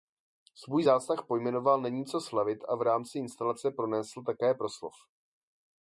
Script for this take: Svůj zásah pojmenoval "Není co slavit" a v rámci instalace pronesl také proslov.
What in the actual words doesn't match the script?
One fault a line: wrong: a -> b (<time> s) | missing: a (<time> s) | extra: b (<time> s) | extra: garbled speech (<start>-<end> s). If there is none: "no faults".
no faults